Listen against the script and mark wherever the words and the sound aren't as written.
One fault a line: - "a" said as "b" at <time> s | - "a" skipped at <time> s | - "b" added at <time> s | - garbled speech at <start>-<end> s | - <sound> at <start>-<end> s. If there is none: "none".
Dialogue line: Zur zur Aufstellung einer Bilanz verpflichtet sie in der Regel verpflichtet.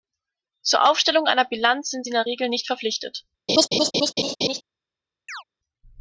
- "zur" skipped at 0.9 s
- "verpflichtet" said as "sind" at 1.9 s
- "nicht" added at 2.5 s
- laugh at 3.5-4.6 s
- chirp at 5.3-5.4 s